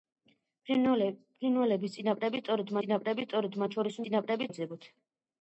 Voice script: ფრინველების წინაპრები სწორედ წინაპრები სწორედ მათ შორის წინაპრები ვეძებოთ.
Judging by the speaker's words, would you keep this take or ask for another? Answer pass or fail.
pass